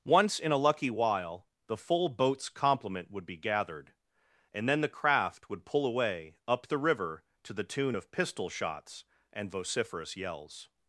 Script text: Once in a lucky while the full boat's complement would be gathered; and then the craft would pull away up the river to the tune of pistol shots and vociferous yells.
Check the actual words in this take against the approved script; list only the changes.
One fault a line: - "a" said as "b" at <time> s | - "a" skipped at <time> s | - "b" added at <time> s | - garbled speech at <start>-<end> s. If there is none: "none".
none